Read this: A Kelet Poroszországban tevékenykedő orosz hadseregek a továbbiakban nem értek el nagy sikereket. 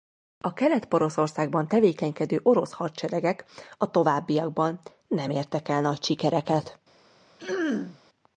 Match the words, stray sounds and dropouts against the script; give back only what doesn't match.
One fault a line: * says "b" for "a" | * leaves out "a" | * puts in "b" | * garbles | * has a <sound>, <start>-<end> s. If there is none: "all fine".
* has a throat clearing, 7.4-8.0 s